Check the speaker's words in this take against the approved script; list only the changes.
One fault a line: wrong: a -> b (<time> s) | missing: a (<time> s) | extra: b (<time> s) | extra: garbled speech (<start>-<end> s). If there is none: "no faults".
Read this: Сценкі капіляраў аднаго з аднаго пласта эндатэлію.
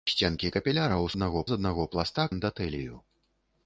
no faults